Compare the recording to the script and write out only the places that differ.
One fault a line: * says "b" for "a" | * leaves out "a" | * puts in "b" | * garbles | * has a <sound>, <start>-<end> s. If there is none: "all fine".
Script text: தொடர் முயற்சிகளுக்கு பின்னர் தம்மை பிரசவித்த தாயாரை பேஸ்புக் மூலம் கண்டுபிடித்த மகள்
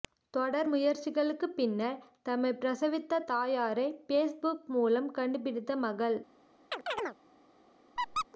* has a chirp, 6.7-7.2 s
* has a squeak, 8.0-8.3 s